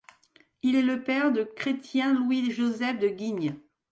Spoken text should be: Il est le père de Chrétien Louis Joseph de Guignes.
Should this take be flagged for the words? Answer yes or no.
no